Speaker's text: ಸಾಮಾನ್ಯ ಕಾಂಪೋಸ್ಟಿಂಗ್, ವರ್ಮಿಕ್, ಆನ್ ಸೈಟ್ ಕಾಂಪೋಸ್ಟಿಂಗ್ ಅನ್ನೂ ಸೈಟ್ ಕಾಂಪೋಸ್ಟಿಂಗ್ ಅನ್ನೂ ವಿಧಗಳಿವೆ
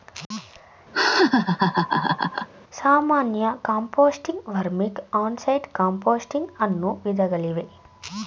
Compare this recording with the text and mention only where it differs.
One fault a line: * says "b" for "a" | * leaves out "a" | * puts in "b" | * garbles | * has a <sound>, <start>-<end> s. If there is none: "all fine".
* has a laugh, 0.9-2.5 s
* leaves out "ಸೈಟ್ ಕಾಂಪೋಸ್ಟಿಂಗ್ ಅನ್ನೂ"